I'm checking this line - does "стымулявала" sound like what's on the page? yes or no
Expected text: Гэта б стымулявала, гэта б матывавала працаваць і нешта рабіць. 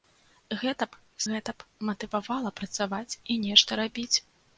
no